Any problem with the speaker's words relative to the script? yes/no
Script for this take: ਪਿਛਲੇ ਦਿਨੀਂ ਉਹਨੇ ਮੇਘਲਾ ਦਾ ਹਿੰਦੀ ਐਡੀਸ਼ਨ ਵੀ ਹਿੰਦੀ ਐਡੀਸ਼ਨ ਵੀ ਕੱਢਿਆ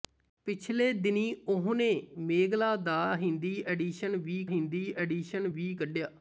no